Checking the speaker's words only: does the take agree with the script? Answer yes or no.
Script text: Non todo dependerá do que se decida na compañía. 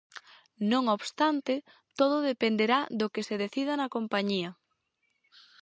no